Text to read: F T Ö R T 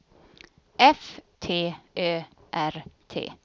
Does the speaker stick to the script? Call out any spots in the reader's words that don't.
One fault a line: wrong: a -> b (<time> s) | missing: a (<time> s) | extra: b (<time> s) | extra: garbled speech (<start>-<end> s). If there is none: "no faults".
no faults